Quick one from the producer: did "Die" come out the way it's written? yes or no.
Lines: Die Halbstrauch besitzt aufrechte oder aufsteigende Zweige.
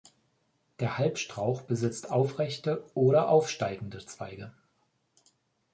no